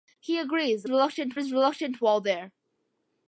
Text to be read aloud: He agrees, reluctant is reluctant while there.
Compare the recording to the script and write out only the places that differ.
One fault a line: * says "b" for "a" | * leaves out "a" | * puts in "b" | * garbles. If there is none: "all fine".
all fine